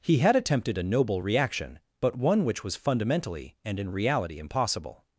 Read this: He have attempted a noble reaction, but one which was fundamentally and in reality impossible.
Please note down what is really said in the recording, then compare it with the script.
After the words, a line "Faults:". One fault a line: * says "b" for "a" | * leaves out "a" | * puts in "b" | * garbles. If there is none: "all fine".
He had attempted a noble reaction, but one which was fundamentally and in reality impossible.
Faults:
* says "had" for "have"